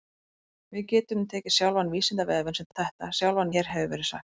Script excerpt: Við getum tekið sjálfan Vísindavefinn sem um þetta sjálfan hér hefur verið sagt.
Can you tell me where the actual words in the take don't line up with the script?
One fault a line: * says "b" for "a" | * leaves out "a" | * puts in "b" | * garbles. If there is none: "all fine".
all fine